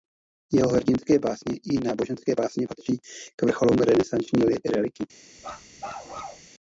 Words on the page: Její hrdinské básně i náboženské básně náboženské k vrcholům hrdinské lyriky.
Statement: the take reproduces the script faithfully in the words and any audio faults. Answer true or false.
false